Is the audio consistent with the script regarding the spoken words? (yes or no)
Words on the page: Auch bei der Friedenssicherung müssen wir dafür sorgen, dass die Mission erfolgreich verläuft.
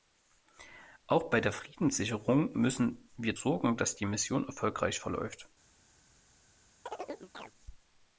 no